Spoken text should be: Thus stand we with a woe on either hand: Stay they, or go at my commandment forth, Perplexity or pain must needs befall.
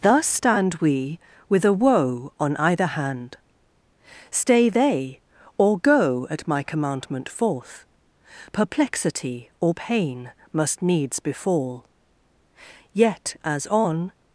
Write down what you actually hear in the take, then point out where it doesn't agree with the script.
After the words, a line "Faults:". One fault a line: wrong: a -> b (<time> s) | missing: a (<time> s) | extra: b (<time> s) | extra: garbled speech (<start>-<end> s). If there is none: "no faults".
Thus stand we with a woe on either hand: Stay they, or go at my commandment forth, Perplexity or pain must needs befall. Yet, as on
Faults:
extra: Yet as on (12.9 s)